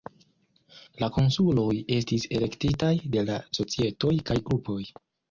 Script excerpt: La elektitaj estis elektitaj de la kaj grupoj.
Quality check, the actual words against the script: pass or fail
fail